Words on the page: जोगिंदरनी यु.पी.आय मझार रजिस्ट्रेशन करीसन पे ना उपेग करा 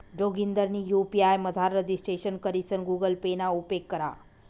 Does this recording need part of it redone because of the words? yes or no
yes